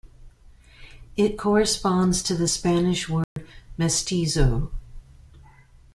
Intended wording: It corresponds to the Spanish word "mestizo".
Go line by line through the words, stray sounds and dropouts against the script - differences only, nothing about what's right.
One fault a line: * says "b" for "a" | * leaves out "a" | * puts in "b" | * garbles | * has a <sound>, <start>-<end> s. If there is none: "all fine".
* has a dropout, 3.2-3.4 s